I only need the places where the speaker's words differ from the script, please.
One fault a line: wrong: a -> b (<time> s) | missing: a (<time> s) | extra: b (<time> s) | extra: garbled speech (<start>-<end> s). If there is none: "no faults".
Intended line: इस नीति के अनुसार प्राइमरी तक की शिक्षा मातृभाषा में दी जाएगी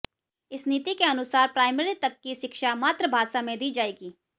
no faults